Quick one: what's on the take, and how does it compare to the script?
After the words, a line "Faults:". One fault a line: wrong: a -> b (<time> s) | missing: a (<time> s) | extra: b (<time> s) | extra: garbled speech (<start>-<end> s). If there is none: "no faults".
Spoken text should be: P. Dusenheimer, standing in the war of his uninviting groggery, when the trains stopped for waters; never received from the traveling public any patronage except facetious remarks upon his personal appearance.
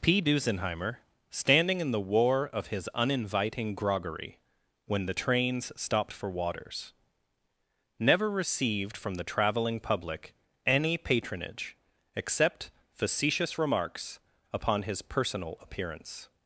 P. Dusenheimer, standing in the war of his uninviting groggery, when the trains stopped for waters; never received from the traveling public any patronage except facetious remarks upon his personal appearance.
Faults:
no faults